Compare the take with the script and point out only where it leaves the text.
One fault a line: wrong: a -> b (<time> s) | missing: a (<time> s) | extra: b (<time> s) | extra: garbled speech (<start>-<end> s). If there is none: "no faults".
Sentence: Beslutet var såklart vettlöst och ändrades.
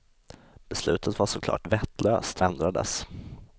missing: och (2.4 s)